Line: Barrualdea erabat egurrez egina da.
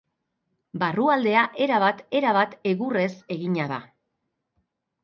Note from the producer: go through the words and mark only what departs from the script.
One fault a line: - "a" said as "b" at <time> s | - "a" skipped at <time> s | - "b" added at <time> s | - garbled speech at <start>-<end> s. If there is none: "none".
- "erabat" added at 2.2 s